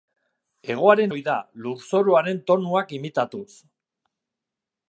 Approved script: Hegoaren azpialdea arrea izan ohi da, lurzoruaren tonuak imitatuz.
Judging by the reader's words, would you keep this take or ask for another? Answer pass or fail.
fail